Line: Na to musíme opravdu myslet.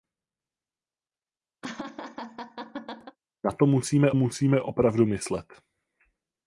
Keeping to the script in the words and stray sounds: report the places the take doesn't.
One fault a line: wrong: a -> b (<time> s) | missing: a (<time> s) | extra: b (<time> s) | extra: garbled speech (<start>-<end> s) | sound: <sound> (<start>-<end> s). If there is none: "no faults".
sound: laugh (1.6-3.2 s)
extra: musíme (4.1 s)